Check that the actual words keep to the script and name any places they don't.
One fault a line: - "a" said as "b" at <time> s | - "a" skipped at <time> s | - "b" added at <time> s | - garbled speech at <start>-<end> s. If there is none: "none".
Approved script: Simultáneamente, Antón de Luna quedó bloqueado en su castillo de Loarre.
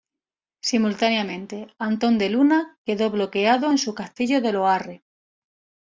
none